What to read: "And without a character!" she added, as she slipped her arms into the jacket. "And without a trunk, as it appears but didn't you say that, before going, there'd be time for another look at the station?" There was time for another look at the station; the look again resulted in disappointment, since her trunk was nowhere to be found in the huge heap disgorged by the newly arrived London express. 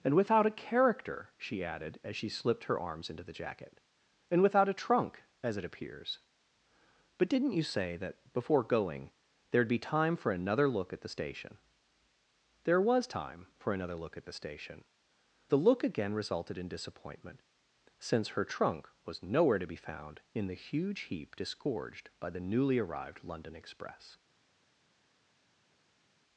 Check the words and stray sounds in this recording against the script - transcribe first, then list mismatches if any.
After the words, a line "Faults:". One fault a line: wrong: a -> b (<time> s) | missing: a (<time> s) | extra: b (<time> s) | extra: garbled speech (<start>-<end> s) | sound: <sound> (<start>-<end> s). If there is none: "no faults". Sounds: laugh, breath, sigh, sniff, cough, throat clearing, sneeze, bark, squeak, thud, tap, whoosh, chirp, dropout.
"And without a character!" she added, as she slipped her arms into the jacket. "And without a trunk, as it appears but didn't you say that, before going, there'd be time for another look at the station?" There was time for another look at the station; the look again resulted in disappointment, since her trunk was nowhere to be found in the huge heap disgorged by the newly arrived London express.
Faults:
no faults